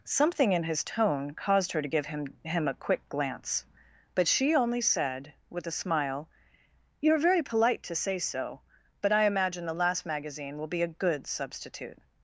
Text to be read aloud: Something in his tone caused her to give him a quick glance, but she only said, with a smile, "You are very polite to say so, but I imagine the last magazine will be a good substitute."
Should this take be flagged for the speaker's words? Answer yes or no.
yes